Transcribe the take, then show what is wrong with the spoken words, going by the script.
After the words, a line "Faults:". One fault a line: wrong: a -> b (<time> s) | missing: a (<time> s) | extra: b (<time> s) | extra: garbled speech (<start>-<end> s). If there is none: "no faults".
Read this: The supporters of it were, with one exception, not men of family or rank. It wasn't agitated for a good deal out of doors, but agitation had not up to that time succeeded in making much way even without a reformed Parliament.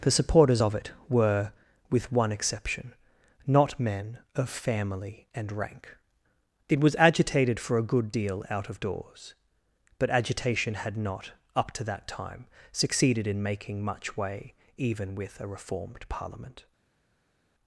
The supporters of it were, with one exception, not men of family and rank. It was agitated for a good deal out of doors, but agitation had not up to that time succeeded in making much way even with a reformed Parliament.
Faults:
wrong: or -> and (5.3 s)
wrong: wasn't -> was (6.8 s)
wrong: without -> with (15.1 s)